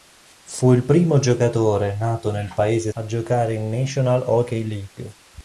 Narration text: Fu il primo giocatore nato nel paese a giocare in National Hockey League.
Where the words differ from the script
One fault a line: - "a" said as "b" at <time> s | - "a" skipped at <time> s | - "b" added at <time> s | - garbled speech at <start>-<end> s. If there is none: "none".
none